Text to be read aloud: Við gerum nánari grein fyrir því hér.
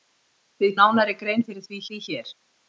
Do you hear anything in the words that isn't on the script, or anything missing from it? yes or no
yes